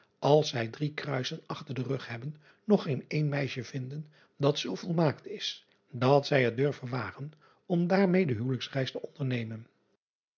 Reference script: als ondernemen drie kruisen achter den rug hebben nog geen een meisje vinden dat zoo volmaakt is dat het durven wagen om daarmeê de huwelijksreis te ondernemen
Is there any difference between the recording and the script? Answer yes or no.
yes